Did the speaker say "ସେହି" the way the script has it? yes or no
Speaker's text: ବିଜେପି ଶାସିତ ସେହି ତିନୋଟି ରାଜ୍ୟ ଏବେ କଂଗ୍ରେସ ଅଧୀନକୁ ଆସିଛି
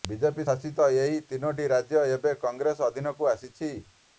no